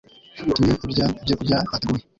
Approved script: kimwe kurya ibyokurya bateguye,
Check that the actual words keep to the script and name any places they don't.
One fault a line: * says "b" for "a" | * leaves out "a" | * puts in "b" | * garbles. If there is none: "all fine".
all fine